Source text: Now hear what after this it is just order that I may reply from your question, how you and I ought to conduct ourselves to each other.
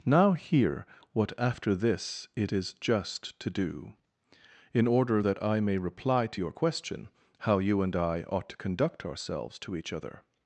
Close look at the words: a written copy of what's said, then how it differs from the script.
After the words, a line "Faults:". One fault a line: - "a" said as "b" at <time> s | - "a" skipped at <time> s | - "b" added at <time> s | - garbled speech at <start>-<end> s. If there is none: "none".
Now hear what after this it is just to do, in order that I may reply to your question, how you and I ought to conduct ourselves to each other.
Faults:
- "to do in" added at 3.4 s
- "from" said as "to" at 6.3 s